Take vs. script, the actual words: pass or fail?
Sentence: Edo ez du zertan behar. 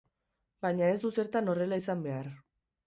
fail